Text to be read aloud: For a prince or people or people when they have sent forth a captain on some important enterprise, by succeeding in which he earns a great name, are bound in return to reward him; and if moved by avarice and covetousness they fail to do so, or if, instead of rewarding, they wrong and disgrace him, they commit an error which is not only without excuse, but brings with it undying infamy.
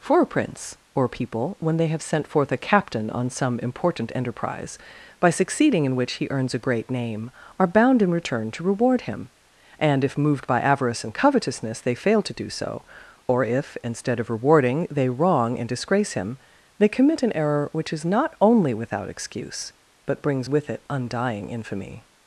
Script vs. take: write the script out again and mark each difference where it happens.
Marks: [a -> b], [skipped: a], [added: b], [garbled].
For a prince or people [skipped: or people] when they have sent forth a captain on some important enterprise, by succeeding in which he earns a great name, are bound in return to reward him; and if moved by avarice and covetousness they fail to do so, or if, instead of rewarding, they wrong and disgrace him, they commit an error which is not only without excuse, but brings with it undying infamy.